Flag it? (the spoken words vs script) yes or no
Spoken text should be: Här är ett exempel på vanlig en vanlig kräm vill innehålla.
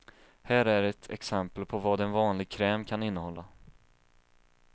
yes